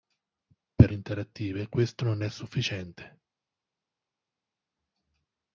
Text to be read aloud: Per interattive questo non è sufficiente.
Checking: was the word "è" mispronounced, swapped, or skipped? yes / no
no